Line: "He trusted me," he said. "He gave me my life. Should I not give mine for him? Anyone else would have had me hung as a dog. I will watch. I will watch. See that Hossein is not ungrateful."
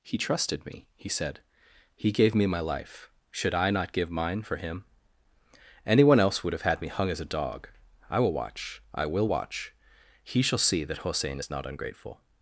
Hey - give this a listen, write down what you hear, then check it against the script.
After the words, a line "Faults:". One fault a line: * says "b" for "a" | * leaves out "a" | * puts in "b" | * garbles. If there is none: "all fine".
"He trusted me," he said. "He gave me my life. Should I not give mine for him? Anyone else would have had me hung as a dog. I will watch. I will watch. He shall see that Hossein is not ungrateful."
Faults:
* puts in "He shall"